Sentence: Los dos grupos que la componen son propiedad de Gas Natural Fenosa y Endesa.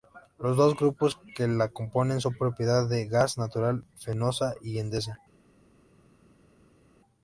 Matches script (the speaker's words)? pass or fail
pass